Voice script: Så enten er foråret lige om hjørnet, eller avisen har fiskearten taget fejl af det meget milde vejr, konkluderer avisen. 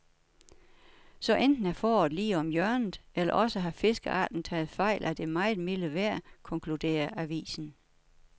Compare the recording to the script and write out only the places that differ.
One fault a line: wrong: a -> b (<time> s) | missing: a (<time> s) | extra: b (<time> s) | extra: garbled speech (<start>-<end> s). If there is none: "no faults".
wrong: avisen -> også (3.3 s)